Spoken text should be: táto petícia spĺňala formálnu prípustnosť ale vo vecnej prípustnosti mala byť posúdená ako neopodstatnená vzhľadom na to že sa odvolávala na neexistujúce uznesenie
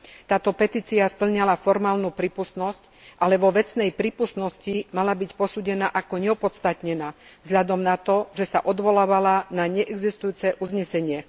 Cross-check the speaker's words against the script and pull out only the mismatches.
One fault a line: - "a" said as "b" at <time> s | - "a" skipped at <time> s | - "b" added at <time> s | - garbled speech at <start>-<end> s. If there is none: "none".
none